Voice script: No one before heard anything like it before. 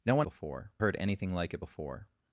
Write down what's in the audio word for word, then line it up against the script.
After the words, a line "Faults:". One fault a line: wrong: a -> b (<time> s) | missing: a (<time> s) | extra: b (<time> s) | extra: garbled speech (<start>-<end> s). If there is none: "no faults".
No one before heard anything like it before.
Faults:
no faults